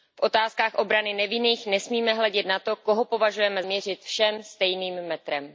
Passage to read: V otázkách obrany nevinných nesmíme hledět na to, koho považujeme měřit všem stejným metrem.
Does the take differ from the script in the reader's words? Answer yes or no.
no